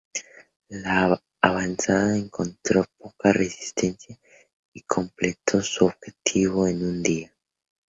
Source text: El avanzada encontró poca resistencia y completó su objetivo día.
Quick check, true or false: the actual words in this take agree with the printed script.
false